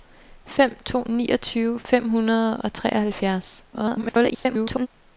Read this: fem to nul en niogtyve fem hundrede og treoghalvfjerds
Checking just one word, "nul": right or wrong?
wrong